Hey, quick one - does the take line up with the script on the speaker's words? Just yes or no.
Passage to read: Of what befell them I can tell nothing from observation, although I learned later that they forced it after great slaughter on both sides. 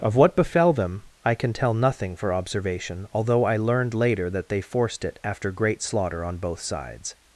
no